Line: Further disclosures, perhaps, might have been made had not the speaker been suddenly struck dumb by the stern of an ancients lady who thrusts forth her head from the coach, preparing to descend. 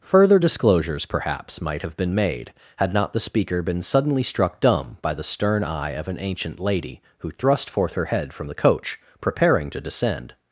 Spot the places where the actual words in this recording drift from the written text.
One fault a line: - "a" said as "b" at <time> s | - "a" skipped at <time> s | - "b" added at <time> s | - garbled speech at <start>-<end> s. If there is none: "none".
- "eye" added at 5.6 s
- "ancients" said as "ancient" at 6.2 s
- "thrusts" said as "thrust" at 7.3 s